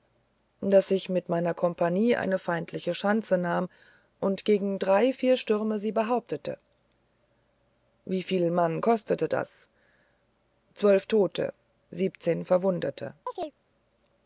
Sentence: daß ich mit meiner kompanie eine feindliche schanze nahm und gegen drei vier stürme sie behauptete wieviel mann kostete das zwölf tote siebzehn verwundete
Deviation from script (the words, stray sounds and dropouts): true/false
true